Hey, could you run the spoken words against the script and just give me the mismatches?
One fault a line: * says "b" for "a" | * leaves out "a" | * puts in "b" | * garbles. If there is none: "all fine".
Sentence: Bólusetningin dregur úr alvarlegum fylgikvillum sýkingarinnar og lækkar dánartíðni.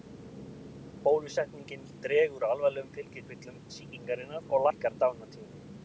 all fine